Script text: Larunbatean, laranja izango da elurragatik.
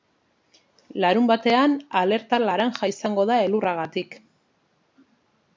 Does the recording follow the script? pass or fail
fail